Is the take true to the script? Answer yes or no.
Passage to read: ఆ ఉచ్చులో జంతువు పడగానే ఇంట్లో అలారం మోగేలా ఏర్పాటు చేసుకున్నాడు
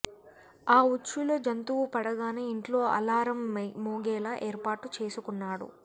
yes